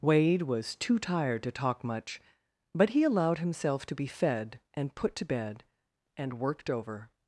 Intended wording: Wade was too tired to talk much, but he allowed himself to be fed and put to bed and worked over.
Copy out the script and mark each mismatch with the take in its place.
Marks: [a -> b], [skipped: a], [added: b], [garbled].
Wade was too tired to talk much, but he allowed himself to be fed and put to bed and worked over.